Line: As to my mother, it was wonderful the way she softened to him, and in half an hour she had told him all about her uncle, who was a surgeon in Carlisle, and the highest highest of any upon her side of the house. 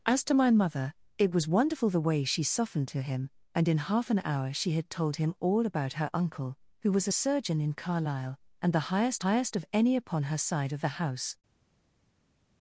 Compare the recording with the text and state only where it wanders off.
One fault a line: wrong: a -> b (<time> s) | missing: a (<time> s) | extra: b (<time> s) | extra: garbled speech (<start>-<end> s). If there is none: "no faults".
no faults